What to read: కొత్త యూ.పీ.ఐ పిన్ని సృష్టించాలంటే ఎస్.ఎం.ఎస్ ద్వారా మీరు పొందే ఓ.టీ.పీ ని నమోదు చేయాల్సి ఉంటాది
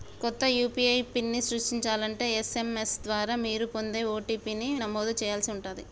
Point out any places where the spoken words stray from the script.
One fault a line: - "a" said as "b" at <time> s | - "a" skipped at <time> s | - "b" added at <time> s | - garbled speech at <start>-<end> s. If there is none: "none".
none